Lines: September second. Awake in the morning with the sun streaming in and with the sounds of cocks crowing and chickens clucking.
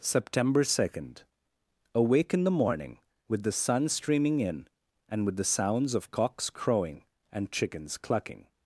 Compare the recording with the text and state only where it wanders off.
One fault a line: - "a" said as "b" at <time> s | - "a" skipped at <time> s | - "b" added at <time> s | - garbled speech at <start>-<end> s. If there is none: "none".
none